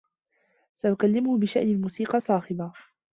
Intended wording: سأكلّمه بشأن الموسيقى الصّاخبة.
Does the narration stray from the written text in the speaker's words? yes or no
no